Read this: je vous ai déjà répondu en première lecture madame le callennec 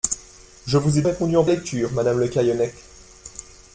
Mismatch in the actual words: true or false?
true